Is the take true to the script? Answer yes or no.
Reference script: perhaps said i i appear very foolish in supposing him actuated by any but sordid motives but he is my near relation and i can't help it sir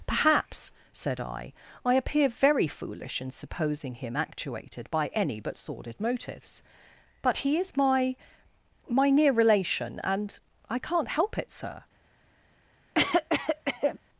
no